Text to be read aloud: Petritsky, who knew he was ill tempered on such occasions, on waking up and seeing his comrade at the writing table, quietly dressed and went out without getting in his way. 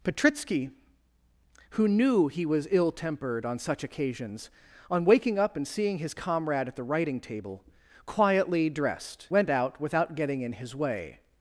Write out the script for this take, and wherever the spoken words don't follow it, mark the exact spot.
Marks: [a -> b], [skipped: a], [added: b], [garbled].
Petritsky, who knew he was ill tempered on such occasions, on waking up and seeing his comrade at the writing table, quietly dressed [skipped: and] went out without getting in his way.